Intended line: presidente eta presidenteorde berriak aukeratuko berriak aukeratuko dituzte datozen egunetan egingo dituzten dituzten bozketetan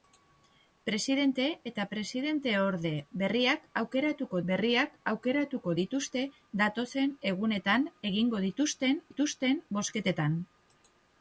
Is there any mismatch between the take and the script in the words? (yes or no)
no